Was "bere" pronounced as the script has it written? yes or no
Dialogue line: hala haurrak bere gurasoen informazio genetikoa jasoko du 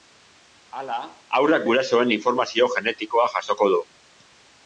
no